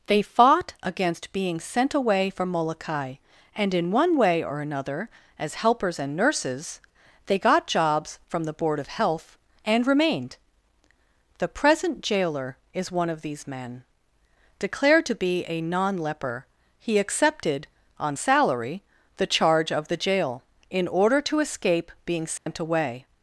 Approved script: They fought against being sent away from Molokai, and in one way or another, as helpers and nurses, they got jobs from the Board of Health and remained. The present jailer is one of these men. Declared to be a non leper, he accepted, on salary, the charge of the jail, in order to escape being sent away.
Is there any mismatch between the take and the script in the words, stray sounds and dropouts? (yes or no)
yes